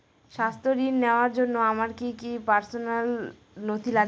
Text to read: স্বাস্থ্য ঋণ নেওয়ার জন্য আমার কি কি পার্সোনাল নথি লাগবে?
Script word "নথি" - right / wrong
right